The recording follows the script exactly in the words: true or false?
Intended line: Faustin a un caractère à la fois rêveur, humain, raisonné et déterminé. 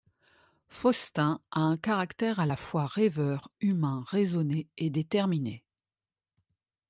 true